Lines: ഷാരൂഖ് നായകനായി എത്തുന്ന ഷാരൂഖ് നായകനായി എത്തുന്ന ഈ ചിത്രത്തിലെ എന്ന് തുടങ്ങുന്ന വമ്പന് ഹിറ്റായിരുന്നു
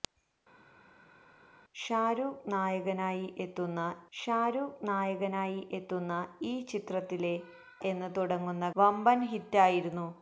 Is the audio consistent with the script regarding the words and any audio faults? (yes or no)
yes